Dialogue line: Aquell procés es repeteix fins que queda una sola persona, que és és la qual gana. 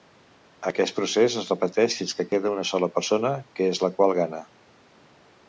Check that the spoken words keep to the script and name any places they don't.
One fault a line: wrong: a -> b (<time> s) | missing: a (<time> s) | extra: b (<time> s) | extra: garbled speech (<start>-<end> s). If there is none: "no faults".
wrong: Aquell -> Aquest (0.7 s)
missing: és (3.8 s)